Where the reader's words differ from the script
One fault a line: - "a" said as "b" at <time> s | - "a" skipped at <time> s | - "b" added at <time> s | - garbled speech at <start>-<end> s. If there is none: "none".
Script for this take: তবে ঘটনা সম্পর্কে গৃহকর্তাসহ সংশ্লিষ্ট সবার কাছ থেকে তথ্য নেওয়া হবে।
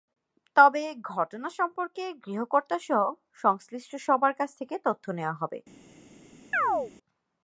none